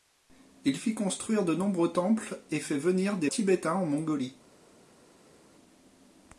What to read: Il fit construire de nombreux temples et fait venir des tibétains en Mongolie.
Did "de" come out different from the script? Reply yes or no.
no